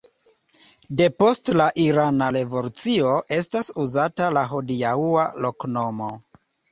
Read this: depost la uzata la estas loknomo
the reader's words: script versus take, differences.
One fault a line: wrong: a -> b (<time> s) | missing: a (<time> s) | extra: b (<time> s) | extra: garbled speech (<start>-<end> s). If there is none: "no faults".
extra: irana revolucio estas (1.8 s)
wrong: estas -> hodiaŭa (4.5 s)